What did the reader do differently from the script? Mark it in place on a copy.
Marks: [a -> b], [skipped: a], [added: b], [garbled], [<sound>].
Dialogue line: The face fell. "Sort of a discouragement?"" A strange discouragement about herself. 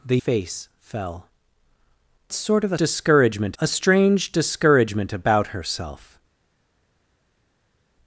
The face fell. "Sort of a discouragement?"" A strange discouragement about herself.